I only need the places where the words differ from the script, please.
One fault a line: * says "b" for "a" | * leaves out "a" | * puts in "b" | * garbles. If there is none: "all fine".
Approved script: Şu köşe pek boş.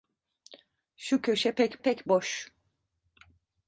* puts in "pek"